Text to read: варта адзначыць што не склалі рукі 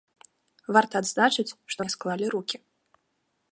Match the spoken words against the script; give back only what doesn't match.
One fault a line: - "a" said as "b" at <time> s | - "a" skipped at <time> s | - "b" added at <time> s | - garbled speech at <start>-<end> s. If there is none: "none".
none